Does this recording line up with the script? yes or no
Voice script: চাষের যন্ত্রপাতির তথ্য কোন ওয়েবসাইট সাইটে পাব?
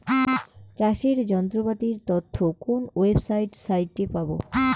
yes